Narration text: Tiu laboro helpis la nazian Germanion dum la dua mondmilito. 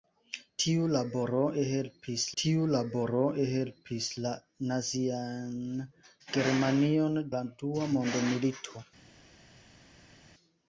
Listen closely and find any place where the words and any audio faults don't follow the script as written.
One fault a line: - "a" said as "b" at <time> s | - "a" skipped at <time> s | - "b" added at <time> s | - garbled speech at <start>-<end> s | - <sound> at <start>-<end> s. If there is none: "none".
- "tiu laboro helpis" added at 2.4 s
- "dum" skipped at 7.2 s